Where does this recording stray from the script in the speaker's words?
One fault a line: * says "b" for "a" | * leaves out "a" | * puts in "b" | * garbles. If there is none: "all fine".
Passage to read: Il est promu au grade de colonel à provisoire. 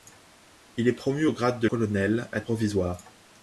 all fine